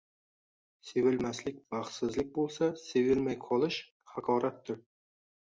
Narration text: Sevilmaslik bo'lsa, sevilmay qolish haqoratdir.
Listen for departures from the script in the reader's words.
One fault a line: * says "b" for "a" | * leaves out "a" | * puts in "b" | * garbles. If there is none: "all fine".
* puts in "baxtsizlik"